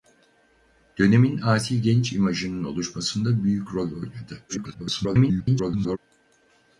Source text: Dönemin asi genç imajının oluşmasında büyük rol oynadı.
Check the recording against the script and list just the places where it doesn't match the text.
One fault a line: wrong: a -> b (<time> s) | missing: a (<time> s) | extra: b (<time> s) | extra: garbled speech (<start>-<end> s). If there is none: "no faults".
extra: garbled speech (4.5-6.0 s)